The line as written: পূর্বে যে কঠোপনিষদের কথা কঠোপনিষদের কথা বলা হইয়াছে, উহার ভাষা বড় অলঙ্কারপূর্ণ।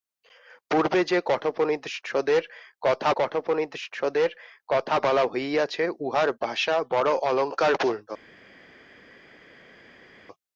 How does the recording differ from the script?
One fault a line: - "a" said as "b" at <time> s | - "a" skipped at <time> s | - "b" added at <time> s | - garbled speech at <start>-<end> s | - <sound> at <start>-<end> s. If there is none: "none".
none